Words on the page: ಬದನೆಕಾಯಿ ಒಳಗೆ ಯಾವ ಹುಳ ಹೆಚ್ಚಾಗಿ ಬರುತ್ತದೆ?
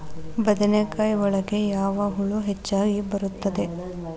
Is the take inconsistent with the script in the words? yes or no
no